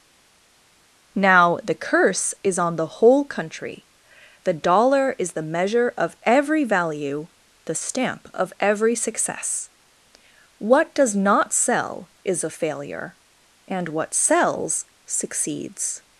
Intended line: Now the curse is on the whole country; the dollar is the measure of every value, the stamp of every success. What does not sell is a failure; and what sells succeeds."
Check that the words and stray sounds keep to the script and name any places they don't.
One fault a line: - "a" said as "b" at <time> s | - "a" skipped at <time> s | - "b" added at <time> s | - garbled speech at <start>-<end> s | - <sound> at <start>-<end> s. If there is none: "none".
none